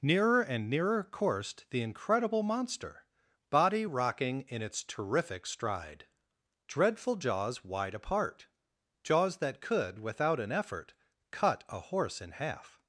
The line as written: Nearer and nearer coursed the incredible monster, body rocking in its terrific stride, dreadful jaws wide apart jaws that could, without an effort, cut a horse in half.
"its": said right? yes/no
yes